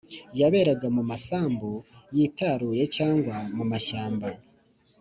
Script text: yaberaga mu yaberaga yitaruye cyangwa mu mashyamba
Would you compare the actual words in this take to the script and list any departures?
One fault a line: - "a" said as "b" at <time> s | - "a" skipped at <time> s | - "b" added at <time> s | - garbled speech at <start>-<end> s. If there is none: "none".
- "yaberaga" said as "masambu" at 1.1 s